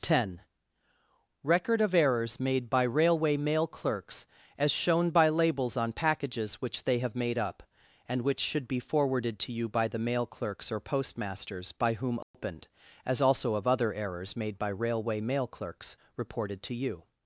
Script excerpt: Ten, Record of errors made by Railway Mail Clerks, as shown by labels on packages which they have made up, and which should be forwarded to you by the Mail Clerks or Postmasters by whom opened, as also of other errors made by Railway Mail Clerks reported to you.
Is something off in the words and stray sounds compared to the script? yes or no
yes